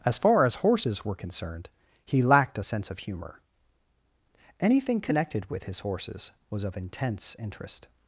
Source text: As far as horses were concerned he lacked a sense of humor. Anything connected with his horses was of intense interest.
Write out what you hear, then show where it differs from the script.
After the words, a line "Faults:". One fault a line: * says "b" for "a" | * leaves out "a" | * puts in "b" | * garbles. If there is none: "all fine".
As far as horses were concerned he lacked a sense of humor. Anything connected with his horses was of intense interest.
Faults:
all fine